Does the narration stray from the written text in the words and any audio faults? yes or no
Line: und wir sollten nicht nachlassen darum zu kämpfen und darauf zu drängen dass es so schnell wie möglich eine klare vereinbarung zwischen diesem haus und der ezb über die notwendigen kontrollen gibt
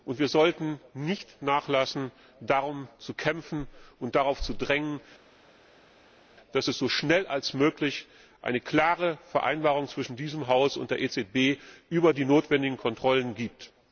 no